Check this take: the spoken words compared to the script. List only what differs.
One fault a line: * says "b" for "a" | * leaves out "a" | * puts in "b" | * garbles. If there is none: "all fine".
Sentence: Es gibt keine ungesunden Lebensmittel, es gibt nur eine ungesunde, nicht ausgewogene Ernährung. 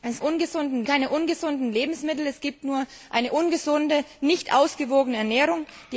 * says "ungesunden" for "gibt"